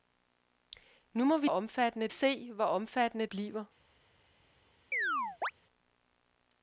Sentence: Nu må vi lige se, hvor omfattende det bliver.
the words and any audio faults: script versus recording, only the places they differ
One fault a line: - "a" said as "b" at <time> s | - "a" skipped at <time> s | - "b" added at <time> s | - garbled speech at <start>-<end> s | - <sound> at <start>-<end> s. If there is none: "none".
- "lige" said as "omfattende" at 1.4 s
- "det" skipped at 3.3 s
- chirp at 4.9-5.5 s